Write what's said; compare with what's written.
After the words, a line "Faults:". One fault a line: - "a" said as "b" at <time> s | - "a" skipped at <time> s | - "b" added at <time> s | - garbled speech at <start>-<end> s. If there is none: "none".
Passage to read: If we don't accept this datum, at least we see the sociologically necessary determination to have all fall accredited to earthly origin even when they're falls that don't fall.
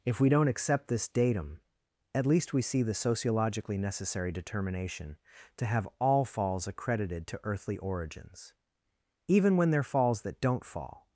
If we don't accept this datum, at least we see the sociologically necessary determination to have all falls accredited to earthly origins even when they're falls that don't fall.
Faults:
- "fall" said as "falls" at 6.2 s
- "origin" said as "origins" at 7.8 s